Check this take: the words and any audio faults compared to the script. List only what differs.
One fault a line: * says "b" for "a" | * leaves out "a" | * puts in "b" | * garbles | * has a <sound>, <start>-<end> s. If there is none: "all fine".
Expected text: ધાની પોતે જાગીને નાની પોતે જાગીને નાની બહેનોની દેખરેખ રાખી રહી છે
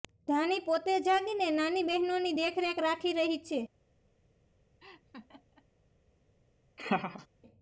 * leaves out "પોતે જાગીને નાની"
* has a laugh, 4.8-5.7 s
* has a laugh, 6.8-7.3 s